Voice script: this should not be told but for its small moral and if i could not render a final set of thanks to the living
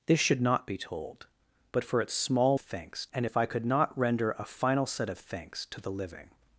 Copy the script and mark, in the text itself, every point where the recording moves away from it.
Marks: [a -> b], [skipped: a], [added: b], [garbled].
this should not be told but for its small [moral -> thanks] and if i could not render a final set of thanks to the living